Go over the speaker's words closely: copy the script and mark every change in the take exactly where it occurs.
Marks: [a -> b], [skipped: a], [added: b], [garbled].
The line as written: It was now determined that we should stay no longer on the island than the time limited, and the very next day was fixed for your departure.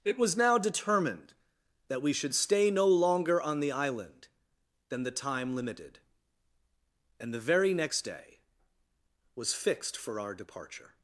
It was now determined that we should stay no longer on the island than the time limited, and the very next day was fixed for [your -> our] departure.